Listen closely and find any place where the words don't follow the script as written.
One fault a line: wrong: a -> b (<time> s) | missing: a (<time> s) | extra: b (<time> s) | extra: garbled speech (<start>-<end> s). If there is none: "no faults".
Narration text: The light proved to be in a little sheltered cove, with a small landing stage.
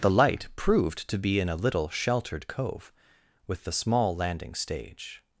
wrong: a -> the (3.6 s)